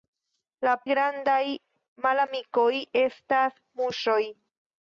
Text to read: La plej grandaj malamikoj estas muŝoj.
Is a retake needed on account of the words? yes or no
yes